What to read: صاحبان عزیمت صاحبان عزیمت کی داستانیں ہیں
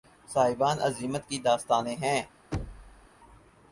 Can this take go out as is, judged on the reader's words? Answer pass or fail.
fail